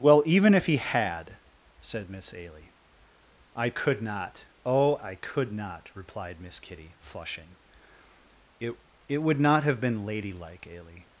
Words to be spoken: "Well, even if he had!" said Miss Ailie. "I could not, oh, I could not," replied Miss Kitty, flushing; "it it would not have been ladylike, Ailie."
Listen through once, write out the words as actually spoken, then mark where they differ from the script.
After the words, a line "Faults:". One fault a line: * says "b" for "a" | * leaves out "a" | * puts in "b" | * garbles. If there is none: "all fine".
"Well, even if he had!" said Miss Ailie. "I could not, oh, I could not," replied Miss Kitty, flushing; "it it would not have been ladylike, Ailie."
Faults:
all fine